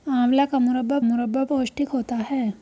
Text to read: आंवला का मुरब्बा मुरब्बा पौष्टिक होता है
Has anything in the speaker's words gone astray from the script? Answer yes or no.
no